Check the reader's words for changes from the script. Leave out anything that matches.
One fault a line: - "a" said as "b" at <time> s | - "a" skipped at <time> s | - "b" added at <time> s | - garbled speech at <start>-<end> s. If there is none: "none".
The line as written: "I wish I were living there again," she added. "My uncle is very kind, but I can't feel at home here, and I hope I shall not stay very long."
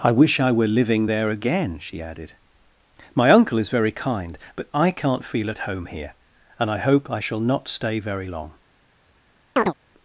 none